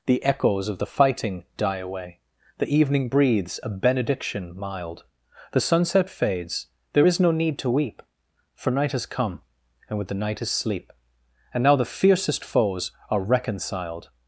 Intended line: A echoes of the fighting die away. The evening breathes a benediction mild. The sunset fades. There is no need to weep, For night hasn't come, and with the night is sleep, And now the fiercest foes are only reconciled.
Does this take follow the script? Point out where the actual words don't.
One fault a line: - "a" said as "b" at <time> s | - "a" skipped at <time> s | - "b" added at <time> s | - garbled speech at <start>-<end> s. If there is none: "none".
- "A" said as "The" at 0.1 s
- "hasn't" said as "has" at 8.9 s
- "only" skipped at 13.2 s